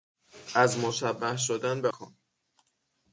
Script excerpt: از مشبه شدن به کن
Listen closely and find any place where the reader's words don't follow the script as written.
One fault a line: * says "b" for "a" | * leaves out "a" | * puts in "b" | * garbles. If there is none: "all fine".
all fine